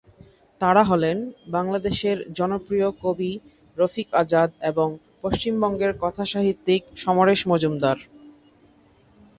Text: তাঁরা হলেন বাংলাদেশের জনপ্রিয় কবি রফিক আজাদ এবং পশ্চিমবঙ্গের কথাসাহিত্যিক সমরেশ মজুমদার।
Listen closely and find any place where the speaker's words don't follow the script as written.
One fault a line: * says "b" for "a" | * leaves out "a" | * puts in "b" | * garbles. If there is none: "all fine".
all fine